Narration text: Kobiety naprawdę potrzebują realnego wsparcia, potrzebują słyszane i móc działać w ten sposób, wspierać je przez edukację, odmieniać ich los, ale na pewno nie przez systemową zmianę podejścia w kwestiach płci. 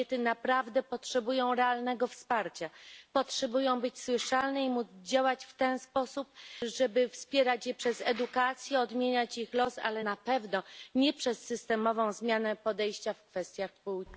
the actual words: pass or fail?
fail